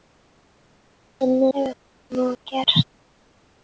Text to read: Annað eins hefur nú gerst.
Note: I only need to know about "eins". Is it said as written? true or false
false